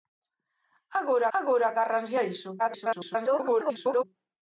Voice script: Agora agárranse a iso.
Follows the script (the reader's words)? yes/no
no